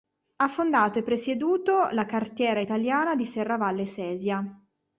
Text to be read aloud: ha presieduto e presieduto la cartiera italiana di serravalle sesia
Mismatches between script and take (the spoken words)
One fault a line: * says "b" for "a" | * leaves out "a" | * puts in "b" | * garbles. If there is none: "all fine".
* says "fondato" for "presieduto"